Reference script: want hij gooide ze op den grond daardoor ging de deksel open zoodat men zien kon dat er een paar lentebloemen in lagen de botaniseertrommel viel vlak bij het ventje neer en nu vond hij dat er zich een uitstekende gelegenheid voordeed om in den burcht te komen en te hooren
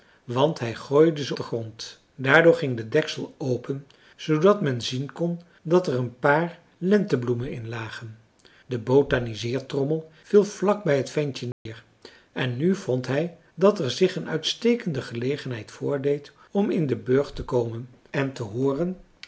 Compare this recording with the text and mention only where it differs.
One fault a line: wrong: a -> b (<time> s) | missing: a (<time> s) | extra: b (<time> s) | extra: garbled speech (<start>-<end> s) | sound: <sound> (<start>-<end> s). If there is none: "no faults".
missing: op (1.4 s)
sound: dropout (11.5-11.7 s)